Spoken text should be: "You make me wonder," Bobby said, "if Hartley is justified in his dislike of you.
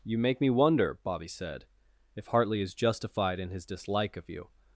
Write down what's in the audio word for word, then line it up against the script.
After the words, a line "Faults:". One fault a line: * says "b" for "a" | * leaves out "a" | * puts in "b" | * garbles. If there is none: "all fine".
"You make me wonder," Bobby said, "if Hartley is justified in his dislike of you.
Faults:
all fine